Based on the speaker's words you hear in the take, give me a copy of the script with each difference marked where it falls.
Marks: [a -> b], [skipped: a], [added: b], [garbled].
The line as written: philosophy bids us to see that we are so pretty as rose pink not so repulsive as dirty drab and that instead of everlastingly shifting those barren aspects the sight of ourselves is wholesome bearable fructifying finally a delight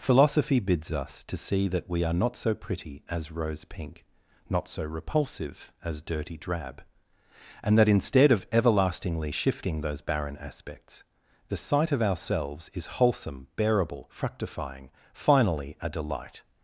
philosophy bids us to see that we are [added: not] so pretty as rose pink not so repulsive as dirty drab and that instead of everlastingly shifting those barren aspects the sight of ourselves is wholesome bearable fructifying finally a delight